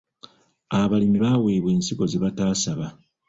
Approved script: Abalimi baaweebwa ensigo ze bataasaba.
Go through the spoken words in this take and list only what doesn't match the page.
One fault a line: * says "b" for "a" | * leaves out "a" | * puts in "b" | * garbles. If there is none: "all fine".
all fine